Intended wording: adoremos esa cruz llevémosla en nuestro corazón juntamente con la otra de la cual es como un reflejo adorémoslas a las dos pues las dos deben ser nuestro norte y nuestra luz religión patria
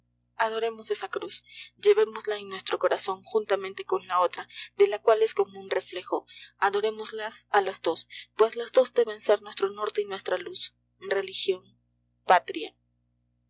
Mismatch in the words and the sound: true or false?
false